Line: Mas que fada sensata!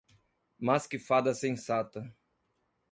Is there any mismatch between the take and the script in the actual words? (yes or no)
no